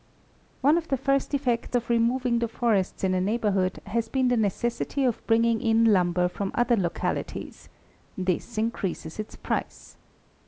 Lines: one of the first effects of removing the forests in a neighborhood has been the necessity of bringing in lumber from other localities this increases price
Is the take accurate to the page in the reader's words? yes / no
no